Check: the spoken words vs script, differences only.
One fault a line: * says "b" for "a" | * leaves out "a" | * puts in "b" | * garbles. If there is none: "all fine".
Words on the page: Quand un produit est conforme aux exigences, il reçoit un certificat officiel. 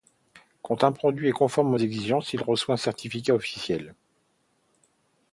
all fine